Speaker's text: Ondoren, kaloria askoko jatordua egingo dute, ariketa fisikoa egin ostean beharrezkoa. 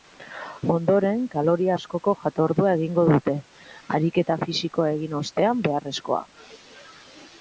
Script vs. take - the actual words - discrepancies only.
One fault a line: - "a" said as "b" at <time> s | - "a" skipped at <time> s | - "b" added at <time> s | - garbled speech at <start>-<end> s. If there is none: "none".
none